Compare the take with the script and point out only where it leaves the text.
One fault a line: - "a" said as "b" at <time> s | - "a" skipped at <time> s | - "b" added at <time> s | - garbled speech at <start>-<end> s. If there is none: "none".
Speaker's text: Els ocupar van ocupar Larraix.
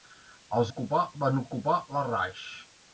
none